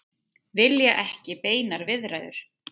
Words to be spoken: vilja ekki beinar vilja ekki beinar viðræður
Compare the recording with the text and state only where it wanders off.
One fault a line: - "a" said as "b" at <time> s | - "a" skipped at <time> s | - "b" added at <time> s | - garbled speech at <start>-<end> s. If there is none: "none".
- "vilja ekki beinar" skipped at 1.9 s